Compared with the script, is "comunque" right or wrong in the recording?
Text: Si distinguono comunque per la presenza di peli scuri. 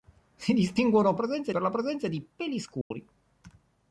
wrong